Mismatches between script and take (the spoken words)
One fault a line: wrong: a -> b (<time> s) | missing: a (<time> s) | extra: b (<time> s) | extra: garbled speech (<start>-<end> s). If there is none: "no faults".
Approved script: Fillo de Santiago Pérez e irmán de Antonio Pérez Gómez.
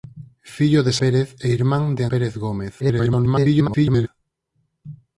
missing: Santiago (0.9 s)
missing: Antonio (2.0 s)
extra: garbled speech (2.8-4.1 s)